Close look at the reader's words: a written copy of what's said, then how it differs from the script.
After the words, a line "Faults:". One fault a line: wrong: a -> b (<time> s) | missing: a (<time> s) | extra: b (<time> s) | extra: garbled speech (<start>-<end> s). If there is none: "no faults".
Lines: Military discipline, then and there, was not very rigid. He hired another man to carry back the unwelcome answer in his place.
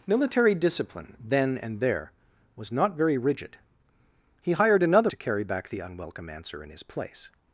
Military discipline, then and there, was not very rigid. He hired another to carry back the unwelcome answer in his place.
Faults:
missing: man (5.1 s)